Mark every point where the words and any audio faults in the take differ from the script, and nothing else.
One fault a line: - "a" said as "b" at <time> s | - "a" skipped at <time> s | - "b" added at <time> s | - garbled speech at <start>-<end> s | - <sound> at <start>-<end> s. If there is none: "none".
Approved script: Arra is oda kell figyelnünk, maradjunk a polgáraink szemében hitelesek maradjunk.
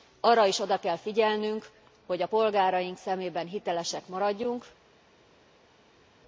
- "maradjunk" said as "hogy" at 2.0 s